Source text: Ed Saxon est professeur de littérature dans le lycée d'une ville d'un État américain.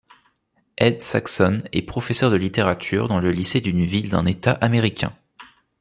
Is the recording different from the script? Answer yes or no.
no